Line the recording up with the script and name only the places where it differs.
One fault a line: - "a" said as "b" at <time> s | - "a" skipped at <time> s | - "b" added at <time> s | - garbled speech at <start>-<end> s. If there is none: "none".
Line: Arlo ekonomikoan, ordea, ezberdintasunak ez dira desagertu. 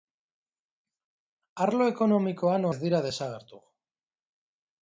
- "ordea ezberdintasunak" skipped at 2.7 s